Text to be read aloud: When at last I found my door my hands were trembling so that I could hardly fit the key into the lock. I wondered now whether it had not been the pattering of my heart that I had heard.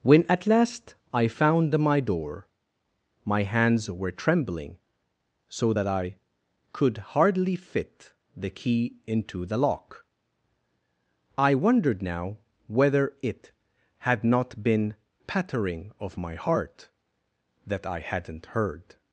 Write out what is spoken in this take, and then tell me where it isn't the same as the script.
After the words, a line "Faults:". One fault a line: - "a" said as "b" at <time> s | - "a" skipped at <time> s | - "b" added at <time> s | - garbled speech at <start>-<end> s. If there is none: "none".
When at last I found my door my hands were trembling so that I could hardly fit the key into the lock. I wondered now whether it had not been pattering of my heart that I hadn't heard.
Faults:
- "the" skipped at 14.9 s
- "had" said as "hadn't" at 18.0 s